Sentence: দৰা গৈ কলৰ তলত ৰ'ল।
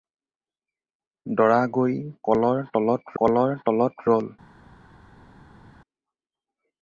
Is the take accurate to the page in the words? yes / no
no